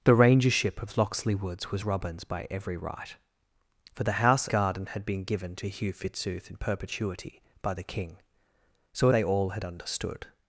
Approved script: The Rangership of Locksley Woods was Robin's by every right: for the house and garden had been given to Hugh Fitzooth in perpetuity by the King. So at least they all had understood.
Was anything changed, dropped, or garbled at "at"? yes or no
yes